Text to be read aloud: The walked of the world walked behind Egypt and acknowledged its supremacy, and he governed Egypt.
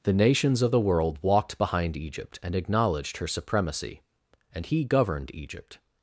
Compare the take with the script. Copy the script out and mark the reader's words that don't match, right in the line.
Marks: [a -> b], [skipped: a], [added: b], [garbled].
The [walked -> nations] of the world walked behind Egypt and acknowledged [its -> her] supremacy, and he governed Egypt.